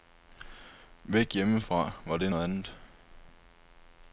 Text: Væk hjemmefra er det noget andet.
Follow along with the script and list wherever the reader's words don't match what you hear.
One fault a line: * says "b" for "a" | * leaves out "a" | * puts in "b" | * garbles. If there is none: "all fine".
* says "var" for "er"